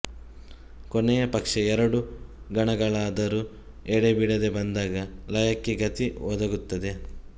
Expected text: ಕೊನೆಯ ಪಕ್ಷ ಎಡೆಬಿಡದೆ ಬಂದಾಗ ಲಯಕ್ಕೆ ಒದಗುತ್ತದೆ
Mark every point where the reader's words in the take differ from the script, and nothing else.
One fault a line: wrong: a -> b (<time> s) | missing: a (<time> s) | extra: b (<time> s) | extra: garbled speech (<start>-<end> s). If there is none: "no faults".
extra: ಎರಡು ಗಣಗಳಾದರೂ (1.6 s)
extra: ಗತಿ (5.8 s)